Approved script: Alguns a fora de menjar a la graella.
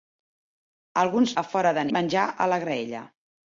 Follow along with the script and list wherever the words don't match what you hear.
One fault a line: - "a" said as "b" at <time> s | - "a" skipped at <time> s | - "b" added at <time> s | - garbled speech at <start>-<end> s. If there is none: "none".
none